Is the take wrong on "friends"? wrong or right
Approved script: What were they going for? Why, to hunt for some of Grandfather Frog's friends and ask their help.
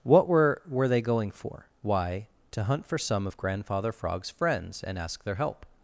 right